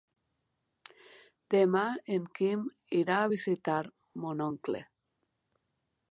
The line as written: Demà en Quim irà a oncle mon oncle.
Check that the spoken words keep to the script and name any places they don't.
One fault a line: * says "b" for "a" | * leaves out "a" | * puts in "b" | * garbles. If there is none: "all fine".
* says "visitar" for "oncle"